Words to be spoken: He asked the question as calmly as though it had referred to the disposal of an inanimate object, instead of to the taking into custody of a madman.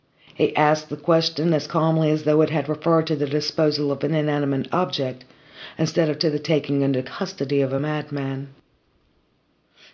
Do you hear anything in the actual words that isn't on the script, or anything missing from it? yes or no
no